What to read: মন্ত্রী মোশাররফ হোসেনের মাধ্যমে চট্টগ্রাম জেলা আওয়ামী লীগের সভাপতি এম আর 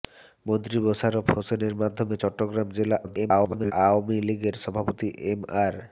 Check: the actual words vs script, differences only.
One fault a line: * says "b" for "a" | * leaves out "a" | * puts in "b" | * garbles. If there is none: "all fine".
* garbles